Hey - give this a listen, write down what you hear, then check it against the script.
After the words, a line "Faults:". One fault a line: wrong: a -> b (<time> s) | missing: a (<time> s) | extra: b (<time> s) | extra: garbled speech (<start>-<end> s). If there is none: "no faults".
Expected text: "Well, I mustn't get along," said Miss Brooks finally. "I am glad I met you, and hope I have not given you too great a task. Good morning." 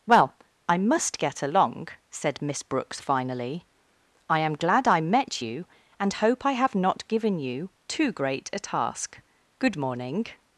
"Well, I must get along," said Miss Brooks finally. "I am glad I met you, and hope I have not given you too great a task. Good morning."
Faults:
wrong: mustn't -> must (0.8 s)